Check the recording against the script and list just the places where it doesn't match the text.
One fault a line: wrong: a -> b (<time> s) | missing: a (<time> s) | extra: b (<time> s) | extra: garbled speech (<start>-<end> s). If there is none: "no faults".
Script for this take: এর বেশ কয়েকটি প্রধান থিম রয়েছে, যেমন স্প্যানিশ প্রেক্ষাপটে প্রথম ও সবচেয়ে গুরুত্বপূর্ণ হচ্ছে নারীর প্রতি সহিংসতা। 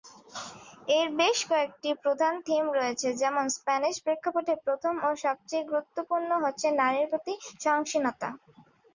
no faults